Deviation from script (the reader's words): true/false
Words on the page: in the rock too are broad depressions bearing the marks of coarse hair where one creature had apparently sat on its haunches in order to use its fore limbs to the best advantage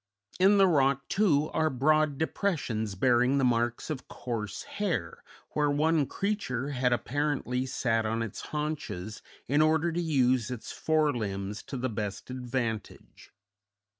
false